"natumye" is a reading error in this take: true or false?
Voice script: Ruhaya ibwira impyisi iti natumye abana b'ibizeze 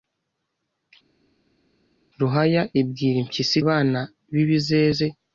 true